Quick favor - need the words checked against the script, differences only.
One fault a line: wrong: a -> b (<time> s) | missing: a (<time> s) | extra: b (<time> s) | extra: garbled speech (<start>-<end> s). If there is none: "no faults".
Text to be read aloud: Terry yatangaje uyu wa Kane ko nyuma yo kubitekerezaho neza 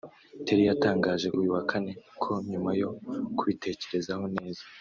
no faults